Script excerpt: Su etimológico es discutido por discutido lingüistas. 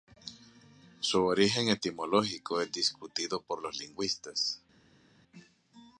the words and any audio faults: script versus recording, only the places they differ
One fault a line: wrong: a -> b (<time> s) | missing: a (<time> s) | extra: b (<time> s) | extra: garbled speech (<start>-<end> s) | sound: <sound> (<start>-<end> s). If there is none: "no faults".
extra: origen (1.2 s)
wrong: discutido -> los (3.6 s)